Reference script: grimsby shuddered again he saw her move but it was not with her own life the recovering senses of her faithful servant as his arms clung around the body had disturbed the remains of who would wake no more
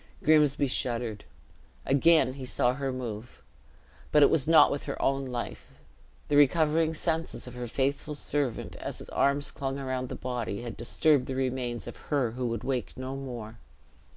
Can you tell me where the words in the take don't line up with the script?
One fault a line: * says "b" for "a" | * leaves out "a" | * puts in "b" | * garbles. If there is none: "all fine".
* puts in "her"